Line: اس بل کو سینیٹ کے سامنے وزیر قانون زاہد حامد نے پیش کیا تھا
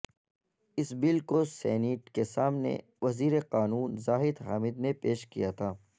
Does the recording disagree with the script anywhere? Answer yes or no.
no